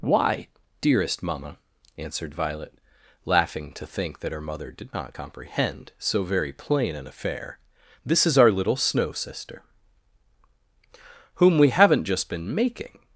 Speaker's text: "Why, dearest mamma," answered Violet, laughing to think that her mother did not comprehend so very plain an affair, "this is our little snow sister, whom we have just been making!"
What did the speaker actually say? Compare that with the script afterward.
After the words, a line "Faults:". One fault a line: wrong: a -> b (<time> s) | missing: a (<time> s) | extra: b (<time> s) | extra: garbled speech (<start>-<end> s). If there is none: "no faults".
"Why, dearest mamma," answered Violet, laughing to think that her mother did not comprehend so very plain an affair, "this is our little snow sister, whom we haven't just been making!"
Faults:
wrong: have -> haven't (11.7 s)